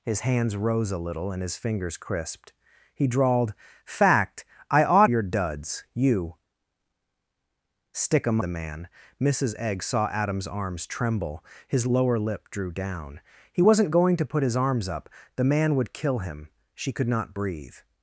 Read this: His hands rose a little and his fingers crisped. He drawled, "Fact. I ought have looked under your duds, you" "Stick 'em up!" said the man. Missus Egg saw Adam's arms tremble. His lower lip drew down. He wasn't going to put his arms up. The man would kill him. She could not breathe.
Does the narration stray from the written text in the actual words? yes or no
yes